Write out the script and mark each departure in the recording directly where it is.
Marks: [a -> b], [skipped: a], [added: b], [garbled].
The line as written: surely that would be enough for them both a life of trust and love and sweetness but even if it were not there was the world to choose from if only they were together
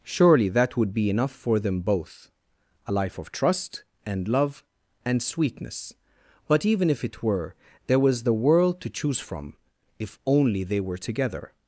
surely that would be enough for them both a life of trust and love and sweetness but even if it were [skipped: not] there was the world to choose from if only they were together